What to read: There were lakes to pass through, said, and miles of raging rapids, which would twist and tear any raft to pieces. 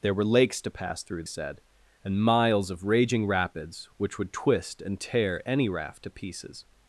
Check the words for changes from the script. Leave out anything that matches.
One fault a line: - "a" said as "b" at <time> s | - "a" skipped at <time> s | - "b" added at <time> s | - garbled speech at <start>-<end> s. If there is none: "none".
none